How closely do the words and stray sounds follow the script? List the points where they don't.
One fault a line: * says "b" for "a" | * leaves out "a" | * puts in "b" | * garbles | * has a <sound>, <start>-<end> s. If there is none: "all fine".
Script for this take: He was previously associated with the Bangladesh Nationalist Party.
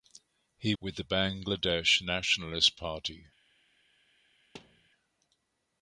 * leaves out "was previously associated"
* has a thud, 4.5-4.9 s